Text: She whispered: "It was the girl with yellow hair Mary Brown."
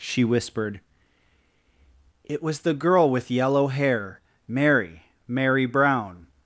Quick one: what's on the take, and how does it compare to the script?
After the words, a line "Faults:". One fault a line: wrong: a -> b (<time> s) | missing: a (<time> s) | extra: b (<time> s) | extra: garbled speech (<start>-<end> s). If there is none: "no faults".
She whispered: "It was the girl with yellow hair Mary Mary Brown."
Faults:
extra: Mary (5.3 s)